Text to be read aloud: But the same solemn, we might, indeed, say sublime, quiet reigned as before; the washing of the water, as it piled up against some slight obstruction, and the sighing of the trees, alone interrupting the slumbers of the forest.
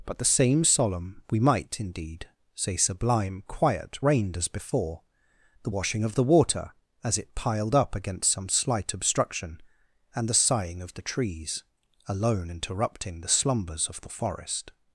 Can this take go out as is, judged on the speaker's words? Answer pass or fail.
pass